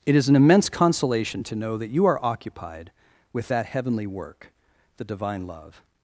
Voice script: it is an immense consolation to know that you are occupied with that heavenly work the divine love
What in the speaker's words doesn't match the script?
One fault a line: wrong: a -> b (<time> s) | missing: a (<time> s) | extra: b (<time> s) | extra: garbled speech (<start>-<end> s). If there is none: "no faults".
no faults